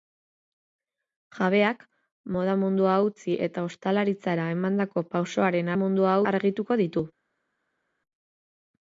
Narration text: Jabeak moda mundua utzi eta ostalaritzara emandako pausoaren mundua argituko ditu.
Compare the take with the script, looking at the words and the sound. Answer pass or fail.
pass